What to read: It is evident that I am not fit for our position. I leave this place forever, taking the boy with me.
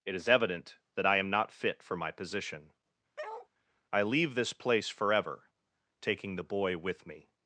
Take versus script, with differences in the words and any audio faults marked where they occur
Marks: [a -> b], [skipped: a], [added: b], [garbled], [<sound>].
It is evident that I am not fit for [our -> my] position. [bark] I leave this place forever, taking the boy with me.